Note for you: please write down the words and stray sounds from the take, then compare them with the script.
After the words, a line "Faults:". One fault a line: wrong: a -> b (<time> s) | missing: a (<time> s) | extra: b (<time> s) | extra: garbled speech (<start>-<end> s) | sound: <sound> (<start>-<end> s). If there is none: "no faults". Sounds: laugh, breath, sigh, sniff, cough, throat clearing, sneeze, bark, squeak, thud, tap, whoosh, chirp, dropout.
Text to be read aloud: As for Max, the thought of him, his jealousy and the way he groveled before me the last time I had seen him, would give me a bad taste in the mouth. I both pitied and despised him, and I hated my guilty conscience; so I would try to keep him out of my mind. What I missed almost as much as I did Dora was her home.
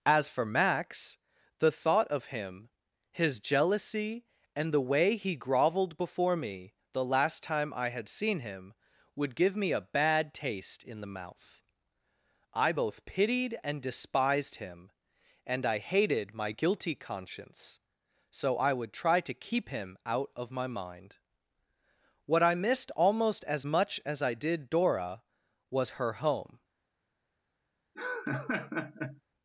As for Max, the thought of him, his jealousy and the way he groveled before me the last time I had seen him, would give me a bad taste in the mouth. I both pitied and despised him, and I hated my guilty conscience; so I would try to keep him out of my mind. What I missed almost as much as I did Dora was her home.
Faults:
sound: laugh (27.9-29.2 s)